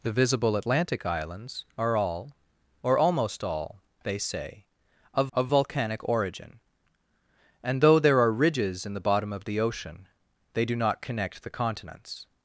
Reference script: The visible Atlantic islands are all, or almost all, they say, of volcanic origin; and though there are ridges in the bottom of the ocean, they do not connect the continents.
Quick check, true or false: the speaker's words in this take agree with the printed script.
false